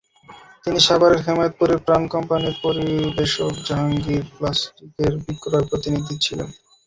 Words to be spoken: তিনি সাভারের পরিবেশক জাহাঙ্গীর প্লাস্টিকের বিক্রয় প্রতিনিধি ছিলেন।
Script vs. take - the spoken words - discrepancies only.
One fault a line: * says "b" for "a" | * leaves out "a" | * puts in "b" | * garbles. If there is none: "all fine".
* puts in "হেমায়েতপুরের প্রাণ কোম্পানির"